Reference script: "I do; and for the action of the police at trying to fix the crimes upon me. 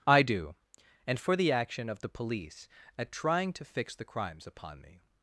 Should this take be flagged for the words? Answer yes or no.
no